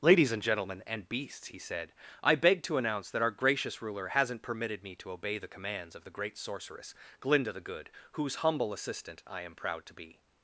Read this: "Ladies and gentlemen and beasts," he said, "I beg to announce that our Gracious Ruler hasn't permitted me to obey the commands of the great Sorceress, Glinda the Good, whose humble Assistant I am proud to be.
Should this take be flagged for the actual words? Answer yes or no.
no